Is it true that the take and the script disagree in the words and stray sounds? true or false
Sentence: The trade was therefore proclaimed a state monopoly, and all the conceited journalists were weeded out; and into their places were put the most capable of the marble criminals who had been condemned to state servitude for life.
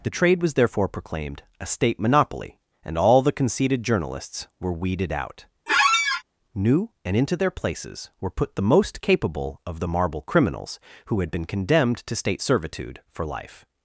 true